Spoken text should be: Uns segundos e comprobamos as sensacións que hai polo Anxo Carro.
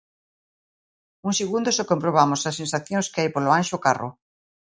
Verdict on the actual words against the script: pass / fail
pass